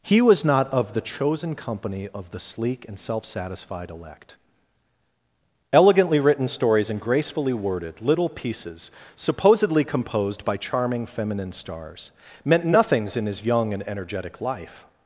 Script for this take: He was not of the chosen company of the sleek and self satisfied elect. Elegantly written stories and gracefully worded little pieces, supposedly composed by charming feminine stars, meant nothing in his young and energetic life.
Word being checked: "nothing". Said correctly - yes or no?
no